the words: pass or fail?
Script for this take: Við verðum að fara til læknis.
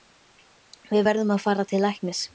pass